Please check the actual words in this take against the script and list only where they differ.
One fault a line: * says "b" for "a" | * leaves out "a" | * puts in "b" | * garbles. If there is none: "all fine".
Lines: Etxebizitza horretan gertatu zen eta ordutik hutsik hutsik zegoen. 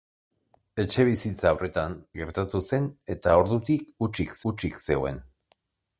all fine